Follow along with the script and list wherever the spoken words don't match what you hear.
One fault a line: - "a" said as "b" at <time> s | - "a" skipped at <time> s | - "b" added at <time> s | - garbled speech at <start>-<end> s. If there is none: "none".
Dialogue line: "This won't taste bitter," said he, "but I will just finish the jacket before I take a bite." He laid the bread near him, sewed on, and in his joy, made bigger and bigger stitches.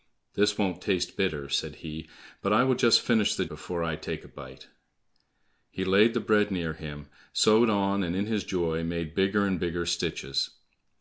- "jacket" skipped at 3.5 s